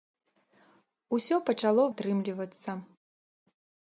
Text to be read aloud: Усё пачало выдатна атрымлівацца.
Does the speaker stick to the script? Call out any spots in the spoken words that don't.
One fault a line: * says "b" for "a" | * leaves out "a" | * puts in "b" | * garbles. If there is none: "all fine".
* leaves out "выдатна"